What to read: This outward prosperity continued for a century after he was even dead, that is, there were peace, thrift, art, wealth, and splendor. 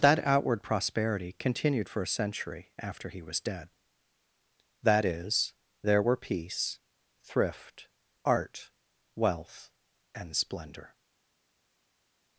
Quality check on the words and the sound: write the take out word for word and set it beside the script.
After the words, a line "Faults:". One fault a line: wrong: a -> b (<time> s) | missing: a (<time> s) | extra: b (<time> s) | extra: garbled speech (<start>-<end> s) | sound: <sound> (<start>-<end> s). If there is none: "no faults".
That outward prosperity continued for a century after he was dead, that is, there were peace, thrift, art, wealth, and splendor.
Faults:
wrong: This -> That (0.0 s)
missing: even (3.4 s)